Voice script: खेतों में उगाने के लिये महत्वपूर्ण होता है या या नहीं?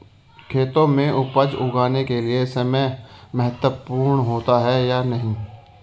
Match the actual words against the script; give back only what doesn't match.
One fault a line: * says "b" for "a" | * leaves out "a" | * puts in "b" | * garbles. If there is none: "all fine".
* puts in "उपज"
* puts in "समय"
* leaves out "या"